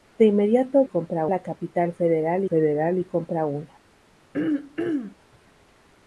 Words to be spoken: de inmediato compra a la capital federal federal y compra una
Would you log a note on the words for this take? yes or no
no